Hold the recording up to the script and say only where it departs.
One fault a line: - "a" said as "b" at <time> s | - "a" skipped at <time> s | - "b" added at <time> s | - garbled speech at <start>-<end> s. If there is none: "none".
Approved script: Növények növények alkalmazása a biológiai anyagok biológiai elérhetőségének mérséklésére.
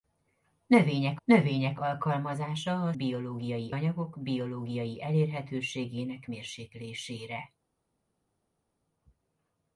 none